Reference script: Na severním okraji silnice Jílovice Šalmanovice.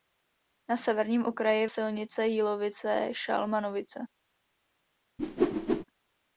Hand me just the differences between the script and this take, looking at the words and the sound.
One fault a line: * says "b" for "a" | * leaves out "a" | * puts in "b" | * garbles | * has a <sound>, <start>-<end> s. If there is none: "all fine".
* has a whoosh, 5.2-5.8 s